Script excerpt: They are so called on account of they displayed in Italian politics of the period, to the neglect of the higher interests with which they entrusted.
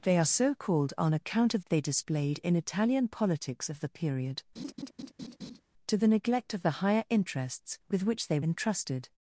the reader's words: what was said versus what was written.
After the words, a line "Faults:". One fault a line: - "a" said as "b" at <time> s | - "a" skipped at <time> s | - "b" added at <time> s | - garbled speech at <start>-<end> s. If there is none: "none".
They are so called on account of they displayed in Italian politics of the period, to the neglect of the higher interests with which they entrusted.
Faults:
none